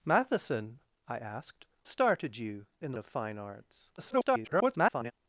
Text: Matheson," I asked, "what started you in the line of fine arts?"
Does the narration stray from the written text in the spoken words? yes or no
yes